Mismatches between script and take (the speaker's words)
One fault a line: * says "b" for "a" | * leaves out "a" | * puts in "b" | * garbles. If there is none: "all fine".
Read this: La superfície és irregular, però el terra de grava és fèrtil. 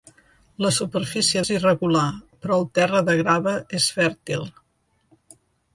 all fine